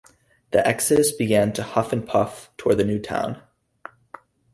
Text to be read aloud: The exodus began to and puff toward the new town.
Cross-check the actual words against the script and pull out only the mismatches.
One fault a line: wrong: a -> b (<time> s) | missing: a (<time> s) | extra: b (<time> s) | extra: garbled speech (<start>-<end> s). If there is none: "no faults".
extra: huff (1.6 s)